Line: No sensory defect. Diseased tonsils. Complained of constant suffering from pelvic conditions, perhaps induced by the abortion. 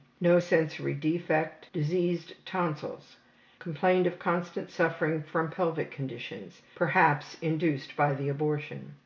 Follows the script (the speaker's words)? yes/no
yes